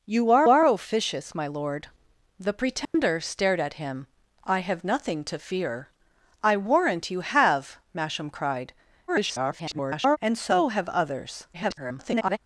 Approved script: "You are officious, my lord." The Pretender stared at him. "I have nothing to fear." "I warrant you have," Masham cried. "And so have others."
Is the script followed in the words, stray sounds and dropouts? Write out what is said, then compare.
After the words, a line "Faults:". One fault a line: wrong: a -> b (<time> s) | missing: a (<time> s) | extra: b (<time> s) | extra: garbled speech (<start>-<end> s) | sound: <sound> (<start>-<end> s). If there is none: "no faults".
"You are are officious, my lord." The Pretender stared at him. "I have nothing to fear." "I warrant you have," Masham cried. [garbled] "And so have others." [garbled]
Faults:
extra: are (0.5 s)
sound: dropout (2.8-2.9 s)
extra: garbled speech (9.1-10.2 s)
extra: garbled speech (11.5-12.4 s)